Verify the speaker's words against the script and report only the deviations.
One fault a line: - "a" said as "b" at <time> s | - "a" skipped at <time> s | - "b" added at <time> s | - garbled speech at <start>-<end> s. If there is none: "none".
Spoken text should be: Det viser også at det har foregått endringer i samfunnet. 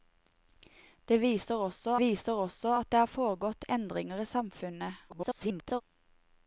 - "viser også" added at 2.0 s
- garbled speech at 5.1-5.8 s